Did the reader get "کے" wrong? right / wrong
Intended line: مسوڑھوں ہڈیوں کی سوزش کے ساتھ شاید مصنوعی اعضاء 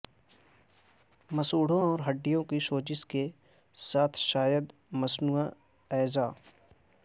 right